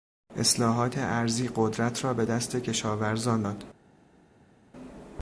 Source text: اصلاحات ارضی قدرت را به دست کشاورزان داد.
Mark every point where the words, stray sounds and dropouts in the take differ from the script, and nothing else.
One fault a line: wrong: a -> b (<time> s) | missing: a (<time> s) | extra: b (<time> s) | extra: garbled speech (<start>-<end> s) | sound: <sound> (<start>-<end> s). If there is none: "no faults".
no faults